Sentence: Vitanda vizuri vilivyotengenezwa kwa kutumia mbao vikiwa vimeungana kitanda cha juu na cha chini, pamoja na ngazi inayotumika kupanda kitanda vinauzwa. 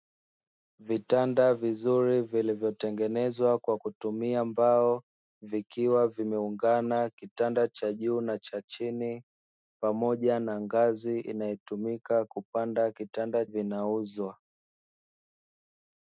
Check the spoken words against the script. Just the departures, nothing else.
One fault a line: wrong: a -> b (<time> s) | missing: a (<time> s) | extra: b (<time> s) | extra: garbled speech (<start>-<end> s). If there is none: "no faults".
no faults